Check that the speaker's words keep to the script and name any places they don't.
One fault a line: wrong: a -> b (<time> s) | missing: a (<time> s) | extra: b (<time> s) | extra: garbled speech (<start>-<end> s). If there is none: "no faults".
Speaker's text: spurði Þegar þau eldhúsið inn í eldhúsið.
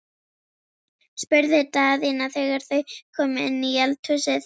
extra: Daðína (1.8 s)
wrong: eldhúsið -> komu (3.2 s)